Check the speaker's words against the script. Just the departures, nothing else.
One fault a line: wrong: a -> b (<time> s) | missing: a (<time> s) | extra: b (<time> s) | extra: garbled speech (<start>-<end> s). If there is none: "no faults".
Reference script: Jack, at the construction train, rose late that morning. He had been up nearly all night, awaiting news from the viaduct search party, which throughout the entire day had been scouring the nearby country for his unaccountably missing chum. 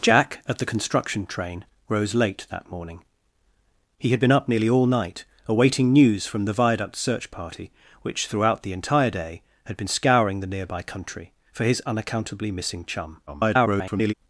extra: garbled speech (13.3-14.1 s)